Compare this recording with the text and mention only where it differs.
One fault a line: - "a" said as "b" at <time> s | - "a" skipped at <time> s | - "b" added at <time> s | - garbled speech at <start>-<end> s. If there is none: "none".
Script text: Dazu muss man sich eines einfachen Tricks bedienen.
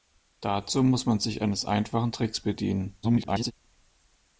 - garbled speech at 3.0-3.5 s